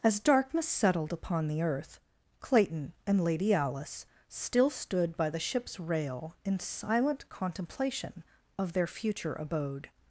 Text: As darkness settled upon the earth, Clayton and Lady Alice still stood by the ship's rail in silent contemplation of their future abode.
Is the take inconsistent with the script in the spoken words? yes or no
no